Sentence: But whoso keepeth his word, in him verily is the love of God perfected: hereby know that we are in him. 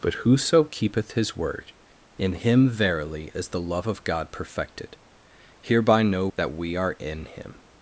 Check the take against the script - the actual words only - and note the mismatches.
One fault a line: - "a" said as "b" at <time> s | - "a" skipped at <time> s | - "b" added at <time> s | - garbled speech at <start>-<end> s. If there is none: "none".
none